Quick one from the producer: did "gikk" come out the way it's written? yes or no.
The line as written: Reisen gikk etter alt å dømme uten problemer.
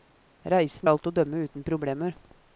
no